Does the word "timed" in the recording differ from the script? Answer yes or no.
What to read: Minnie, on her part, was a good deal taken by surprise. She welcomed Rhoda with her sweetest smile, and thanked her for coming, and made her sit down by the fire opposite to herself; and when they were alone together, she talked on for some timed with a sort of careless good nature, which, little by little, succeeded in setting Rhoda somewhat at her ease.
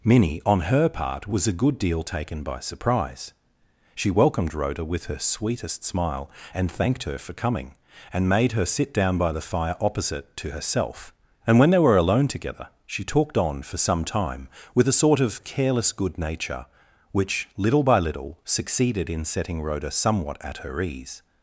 yes